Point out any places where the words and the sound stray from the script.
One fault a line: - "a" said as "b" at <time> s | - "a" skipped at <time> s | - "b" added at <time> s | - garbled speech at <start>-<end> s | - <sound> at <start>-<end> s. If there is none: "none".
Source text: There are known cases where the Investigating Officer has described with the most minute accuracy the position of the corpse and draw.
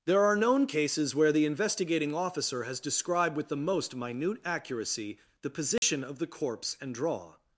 - dropout at 5.8-5.8 s